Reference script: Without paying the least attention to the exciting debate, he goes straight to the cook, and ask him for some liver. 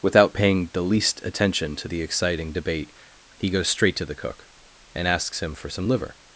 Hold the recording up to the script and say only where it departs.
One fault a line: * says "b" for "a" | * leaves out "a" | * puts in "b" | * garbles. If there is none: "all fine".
* says "asks" for "ask"